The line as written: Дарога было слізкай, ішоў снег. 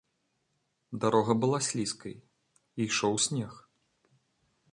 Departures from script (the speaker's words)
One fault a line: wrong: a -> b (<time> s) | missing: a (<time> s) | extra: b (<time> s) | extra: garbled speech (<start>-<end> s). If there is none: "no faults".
wrong: было -> была (1.4 s)